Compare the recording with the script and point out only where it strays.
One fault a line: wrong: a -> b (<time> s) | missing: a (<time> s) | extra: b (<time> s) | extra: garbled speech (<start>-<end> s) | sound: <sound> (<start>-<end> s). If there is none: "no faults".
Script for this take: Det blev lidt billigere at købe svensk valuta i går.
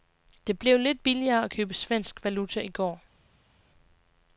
no faults